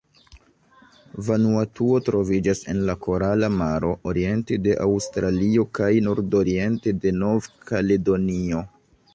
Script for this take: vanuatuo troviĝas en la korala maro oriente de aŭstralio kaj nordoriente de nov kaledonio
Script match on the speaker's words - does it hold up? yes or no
yes